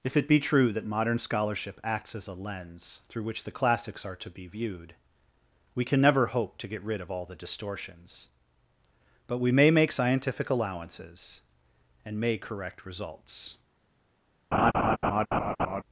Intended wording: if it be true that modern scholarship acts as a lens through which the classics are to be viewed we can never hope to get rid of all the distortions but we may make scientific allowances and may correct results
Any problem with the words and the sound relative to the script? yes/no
yes